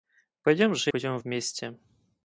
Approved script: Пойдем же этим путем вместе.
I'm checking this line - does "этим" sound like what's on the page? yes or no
no